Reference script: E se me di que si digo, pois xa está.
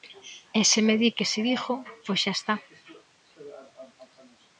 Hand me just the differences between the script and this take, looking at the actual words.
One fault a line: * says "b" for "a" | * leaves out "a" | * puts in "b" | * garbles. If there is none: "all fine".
all fine